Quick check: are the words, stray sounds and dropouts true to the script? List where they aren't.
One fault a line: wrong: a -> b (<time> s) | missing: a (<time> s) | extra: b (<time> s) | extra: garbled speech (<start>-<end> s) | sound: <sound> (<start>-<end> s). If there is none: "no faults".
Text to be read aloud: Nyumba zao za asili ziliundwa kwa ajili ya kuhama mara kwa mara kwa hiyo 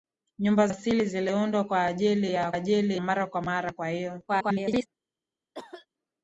missing: zao za (0.7 s)
wrong: kuhama -> ajili (2.5 s)
extra: garbled speech (4.3-4.9 s)
sound: cough (5.5-5.9 s)